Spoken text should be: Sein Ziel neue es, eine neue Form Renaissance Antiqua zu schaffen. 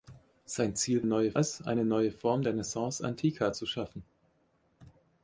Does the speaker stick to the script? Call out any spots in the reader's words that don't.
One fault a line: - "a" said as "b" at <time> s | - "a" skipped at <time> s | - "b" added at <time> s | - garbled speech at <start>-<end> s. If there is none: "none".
none